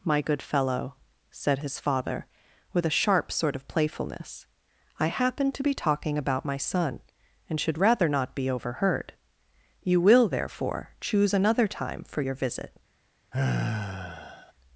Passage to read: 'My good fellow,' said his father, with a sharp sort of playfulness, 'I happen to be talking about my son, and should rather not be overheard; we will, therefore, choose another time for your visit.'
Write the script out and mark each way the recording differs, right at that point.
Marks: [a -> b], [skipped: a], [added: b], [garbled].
'My good fellow,' said his father, with a sharp sort of playfulness, 'I happen to be talking about my son, and should rather not be overheard; [we -> you] will, therefore, choose another time for your visit.'